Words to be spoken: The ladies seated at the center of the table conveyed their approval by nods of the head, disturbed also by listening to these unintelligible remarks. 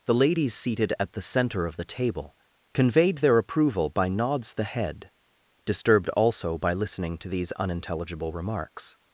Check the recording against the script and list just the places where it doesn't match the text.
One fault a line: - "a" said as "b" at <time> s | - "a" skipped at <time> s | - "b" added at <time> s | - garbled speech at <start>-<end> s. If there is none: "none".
- "of" skipped at 4.5 s